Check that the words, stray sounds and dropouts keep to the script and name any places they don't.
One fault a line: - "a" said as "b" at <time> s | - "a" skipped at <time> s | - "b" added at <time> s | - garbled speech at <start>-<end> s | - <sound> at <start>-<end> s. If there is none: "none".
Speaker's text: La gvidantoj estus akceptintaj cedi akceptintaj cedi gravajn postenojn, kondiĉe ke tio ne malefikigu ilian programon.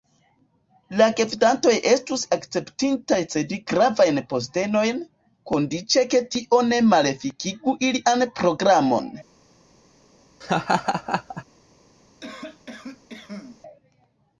- "akceptintaj cedi" skipped at 3.6 s
- laugh at 10.4-11.4 s
- cough at 12.2-13.6 s